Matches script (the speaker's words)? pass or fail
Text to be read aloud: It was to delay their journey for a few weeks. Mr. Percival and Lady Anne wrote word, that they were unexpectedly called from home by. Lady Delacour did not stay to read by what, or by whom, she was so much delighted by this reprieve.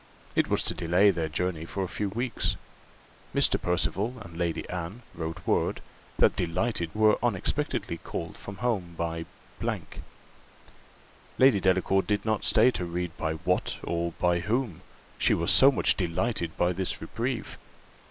fail